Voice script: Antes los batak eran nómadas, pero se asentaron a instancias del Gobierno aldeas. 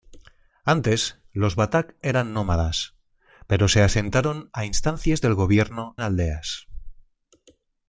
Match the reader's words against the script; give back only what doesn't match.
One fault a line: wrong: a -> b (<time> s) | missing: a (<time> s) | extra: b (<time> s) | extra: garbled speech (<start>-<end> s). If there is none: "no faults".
no faults